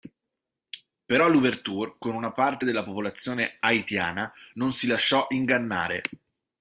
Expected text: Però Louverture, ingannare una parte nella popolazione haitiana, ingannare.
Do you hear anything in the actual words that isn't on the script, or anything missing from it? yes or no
yes